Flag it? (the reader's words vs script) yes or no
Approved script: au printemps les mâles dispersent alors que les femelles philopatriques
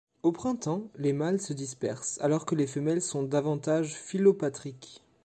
yes